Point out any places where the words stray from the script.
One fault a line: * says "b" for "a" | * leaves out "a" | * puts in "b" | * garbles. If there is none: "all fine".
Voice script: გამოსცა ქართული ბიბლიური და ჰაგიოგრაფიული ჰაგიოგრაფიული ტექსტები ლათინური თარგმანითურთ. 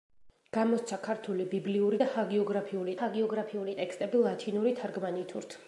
all fine